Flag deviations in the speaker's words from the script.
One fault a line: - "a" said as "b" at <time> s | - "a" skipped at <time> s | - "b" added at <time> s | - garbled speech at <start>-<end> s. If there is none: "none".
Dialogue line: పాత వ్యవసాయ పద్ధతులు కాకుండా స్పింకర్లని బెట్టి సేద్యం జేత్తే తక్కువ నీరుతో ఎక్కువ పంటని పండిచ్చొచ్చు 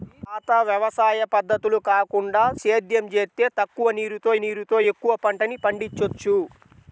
- "స్పింకర్లని బెట్టి" skipped at 2.4 s
- "నీరుతో" added at 4.4 s